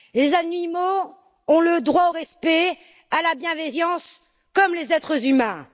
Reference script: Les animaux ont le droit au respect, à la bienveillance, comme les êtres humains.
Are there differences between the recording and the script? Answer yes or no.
no